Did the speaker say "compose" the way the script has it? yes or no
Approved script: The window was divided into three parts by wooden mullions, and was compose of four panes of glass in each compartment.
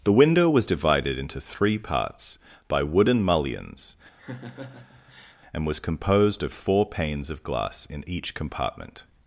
no